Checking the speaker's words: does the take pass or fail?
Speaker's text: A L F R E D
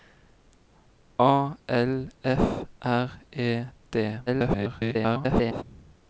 fail